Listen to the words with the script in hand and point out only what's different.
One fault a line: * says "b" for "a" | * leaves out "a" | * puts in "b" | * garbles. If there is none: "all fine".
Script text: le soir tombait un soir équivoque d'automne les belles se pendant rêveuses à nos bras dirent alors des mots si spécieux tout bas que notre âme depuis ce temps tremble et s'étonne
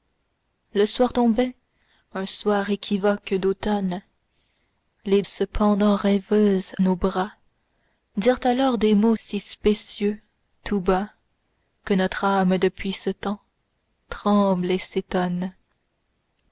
* leaves out "belles"
* leaves out "à"